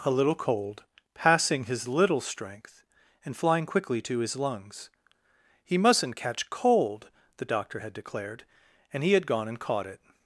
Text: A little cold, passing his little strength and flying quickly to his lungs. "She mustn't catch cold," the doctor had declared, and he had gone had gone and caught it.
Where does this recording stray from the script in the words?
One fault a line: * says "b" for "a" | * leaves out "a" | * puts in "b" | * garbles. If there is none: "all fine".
* says "He" for "She"
* leaves out "had gone"